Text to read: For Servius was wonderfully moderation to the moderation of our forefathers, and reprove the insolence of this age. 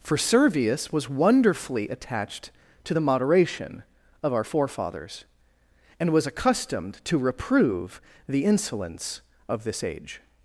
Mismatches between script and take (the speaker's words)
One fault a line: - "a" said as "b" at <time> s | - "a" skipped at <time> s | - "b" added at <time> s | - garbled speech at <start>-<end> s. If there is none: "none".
- "moderation" said as "attached" at 1.9 s
- "was accustomed to" added at 6.1 s